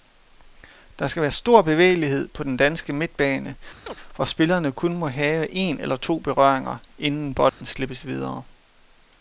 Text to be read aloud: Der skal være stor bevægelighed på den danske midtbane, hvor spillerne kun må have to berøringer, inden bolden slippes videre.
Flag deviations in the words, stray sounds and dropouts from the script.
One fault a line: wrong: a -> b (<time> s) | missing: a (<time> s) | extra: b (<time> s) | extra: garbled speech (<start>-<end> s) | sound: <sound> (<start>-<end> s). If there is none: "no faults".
sound: chirp (3.9-4.0 s)
extra: en eller (5.5 s)
sound: dropout (7.5-7.6 s)